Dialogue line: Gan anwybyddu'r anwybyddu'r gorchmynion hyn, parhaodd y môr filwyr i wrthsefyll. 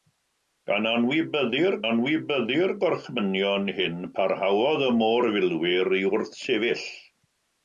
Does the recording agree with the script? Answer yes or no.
yes